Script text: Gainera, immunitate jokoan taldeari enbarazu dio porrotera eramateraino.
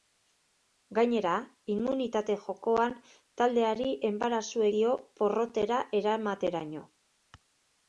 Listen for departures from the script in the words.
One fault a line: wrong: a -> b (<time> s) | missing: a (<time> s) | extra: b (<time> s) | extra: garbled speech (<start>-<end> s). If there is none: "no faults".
no faults